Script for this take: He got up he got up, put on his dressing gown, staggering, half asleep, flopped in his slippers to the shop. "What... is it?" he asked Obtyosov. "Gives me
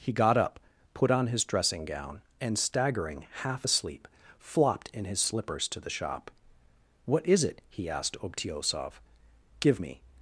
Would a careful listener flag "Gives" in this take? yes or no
yes